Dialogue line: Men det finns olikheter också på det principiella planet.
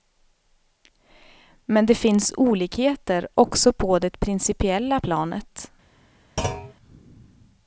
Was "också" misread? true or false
false